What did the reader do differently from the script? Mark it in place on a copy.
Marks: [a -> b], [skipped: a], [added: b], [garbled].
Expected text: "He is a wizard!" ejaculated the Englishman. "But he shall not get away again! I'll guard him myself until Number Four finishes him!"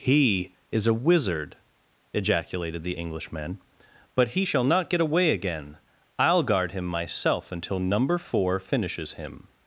"He is a wizard!" ejaculated the Englishman. "But he shall not get away again! I'll guard him myself until Number Four finishes him!"